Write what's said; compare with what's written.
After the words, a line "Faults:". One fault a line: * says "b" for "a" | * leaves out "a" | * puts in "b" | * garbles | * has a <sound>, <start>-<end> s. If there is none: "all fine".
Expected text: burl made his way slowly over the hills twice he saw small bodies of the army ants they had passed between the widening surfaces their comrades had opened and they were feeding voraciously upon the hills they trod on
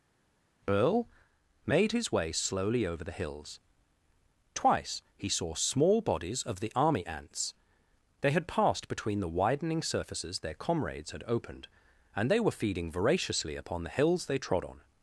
earl made his way slowly over the hills twice he saw small bodies of the army ants they had passed between the widening surfaces their comrades had opened and they were feeding voraciously upon the hills they trod on
Faults:
* says "earl" for "burl"